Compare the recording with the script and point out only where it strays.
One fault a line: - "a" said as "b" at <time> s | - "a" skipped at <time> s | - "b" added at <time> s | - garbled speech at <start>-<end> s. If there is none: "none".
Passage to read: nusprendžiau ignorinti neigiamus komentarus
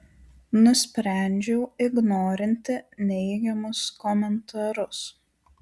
none